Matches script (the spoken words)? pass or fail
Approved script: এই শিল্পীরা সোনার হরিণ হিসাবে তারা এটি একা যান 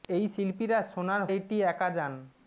fail